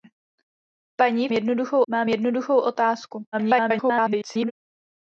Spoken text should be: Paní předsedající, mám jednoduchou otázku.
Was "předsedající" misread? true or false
true